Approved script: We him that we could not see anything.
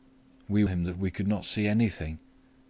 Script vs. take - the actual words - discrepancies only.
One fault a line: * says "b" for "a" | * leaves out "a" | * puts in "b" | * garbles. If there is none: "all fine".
all fine